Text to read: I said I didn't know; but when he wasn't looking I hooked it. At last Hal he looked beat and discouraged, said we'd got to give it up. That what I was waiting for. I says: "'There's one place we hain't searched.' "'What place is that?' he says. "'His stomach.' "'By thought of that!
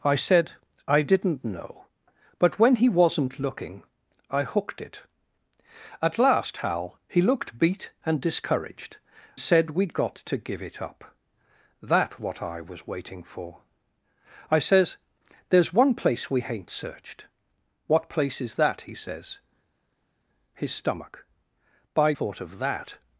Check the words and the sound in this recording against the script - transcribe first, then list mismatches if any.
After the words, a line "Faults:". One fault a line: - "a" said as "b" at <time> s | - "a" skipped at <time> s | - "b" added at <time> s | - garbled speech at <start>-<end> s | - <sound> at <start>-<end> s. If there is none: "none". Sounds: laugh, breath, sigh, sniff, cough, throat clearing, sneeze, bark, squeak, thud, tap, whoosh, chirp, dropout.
I said I didn't know; but when he wasn't looking I hooked it. At last Hal he looked beat and discouraged, said we'd got to give it up. That what I was waiting for. I says: "'There's one place we hain't searched.' "'What place is that?' he says. "'His stomach.' "'By thought of that!
Faults:
none